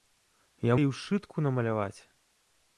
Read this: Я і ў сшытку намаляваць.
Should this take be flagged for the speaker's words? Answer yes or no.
no